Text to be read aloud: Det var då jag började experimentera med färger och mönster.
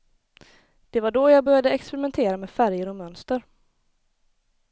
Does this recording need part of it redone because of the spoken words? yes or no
no